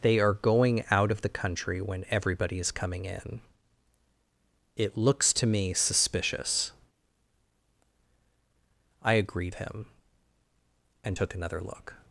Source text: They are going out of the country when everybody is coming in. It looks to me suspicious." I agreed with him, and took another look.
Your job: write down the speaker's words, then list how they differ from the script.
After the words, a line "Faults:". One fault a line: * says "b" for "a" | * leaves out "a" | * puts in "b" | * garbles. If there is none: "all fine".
They are going out of the country when everybody is coming in. It looks to me suspicious." I agreed him, and took another look.
Faults:
* leaves out "with"